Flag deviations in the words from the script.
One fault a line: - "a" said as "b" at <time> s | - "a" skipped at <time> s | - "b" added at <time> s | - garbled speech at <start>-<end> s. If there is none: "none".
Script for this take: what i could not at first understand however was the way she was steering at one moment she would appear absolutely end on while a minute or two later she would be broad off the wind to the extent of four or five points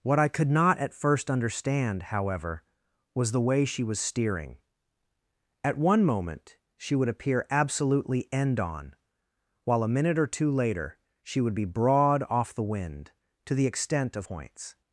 - "four or five" skipped at 14.2 s